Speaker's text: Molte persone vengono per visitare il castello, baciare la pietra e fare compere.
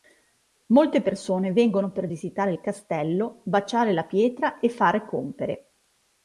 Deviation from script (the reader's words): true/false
false